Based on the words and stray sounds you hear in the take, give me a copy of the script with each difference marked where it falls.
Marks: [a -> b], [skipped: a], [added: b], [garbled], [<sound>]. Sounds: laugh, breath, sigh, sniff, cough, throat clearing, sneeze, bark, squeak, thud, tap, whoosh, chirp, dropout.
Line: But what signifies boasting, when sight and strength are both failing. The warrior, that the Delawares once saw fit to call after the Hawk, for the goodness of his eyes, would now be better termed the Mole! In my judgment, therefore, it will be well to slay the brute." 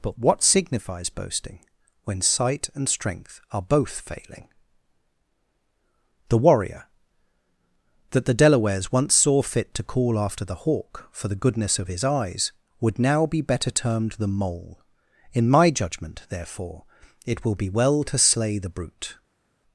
But what signifies boasting, when sight and strength are both failing. The warrior, that the Delawares once saw fit to call after the Hawk, for the goodness of his eyes, would now be better termed the Mole! In my judgment, therefore, it will be well to slay the brute."